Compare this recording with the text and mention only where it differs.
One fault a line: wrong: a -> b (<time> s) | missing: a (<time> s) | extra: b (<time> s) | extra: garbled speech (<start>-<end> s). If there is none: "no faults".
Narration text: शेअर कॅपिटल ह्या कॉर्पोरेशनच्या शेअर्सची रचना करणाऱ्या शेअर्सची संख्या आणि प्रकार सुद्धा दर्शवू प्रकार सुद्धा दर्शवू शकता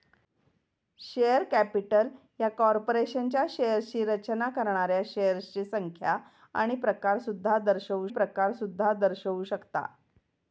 no faults